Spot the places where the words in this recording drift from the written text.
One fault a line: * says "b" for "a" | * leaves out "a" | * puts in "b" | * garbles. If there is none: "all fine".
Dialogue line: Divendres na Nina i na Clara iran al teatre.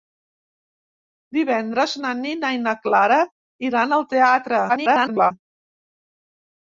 * garbles